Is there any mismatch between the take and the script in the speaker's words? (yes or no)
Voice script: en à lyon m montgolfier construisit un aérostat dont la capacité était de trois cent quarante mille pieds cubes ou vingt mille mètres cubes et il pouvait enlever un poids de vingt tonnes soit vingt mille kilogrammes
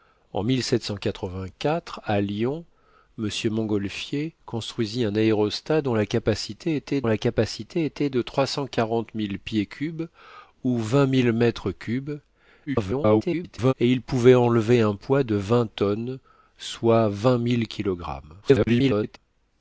yes